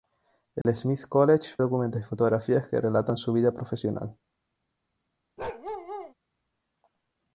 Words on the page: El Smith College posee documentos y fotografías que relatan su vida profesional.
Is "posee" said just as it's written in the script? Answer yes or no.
no